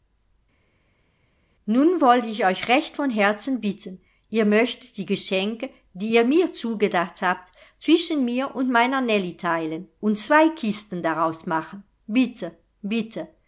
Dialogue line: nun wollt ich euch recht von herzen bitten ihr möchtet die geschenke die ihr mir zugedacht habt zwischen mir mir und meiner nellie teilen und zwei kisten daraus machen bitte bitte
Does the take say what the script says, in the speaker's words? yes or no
no